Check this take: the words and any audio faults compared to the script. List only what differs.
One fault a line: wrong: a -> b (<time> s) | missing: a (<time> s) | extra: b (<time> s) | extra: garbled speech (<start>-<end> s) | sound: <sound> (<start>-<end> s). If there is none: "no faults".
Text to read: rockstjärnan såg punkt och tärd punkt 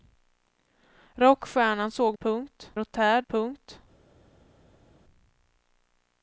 no faults